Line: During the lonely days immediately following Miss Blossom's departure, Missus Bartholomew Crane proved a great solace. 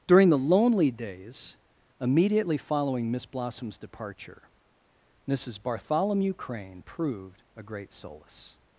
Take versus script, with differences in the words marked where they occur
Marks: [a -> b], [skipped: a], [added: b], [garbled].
During the lonely days immediately following Miss Blossom's departure, Missus Bartholomew Crane proved a great solace.